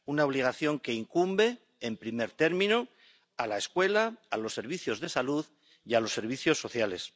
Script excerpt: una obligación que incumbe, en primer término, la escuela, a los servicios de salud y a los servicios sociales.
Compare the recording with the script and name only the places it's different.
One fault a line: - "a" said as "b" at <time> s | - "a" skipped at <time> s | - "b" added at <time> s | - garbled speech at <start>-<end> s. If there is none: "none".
- "a" added at 3.4 s